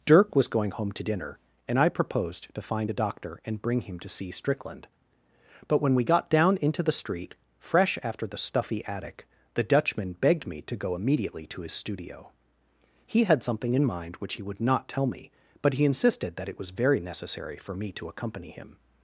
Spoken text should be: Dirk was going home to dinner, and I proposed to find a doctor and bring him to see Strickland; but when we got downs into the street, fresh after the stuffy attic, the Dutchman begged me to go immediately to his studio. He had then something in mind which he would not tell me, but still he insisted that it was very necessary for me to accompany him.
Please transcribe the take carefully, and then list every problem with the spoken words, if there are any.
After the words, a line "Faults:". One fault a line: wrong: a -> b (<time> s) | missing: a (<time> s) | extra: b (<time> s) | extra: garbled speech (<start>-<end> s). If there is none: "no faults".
Dirk was going home to dinner, and I proposed to find a doctor and bring him to see Strickland; but when we got down into the street, fresh after the stuffy attic, the Dutchman begged me to go immediately to his studio. He had something in mind which he would not tell me, but he insisted that it was very necessary for me to accompany him.
Faults:
wrong: downs -> down (6.3 s)
missing: then (13.4 s)
missing: still (15.7 s)